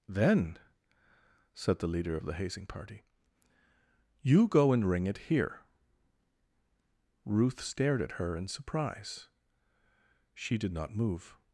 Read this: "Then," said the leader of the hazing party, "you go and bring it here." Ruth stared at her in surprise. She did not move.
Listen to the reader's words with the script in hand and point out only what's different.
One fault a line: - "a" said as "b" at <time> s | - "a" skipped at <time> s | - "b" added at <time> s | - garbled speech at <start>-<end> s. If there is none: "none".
- "bring" said as "ring" at 4.9 s